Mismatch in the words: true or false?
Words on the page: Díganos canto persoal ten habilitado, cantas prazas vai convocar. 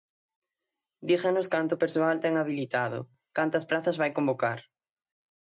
false